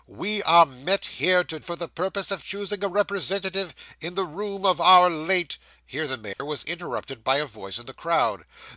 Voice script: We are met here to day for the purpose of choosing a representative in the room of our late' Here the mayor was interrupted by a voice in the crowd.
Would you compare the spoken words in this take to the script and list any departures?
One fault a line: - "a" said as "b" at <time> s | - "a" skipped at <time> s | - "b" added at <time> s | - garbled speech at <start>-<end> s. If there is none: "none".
- "day" skipped at 1.6 s